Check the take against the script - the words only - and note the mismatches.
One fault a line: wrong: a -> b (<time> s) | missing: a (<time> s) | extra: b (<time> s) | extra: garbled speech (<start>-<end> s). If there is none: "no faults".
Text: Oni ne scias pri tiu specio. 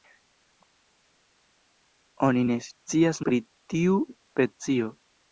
no faults